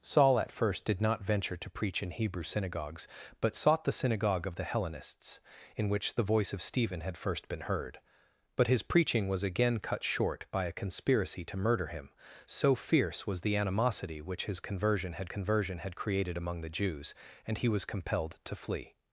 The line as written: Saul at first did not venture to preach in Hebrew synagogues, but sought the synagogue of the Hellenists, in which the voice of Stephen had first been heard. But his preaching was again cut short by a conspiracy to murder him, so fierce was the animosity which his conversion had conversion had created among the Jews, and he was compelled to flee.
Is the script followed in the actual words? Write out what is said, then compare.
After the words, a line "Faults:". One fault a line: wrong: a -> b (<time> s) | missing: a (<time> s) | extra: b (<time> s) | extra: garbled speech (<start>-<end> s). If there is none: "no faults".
Saul at first did not venture to preach in Hebrew synagogues, but sought the synagogue of the Hellenists, in which the voice of Stephen had first been heard. But his preaching was again cut short by a conspiracy to murder him, so fierce was the animosity which his conversion had conversion had created among the Jews, and he was compelled to flee.
Faults:
no faults